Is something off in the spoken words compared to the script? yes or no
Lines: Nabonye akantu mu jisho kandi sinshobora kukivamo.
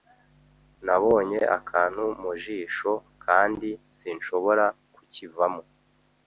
no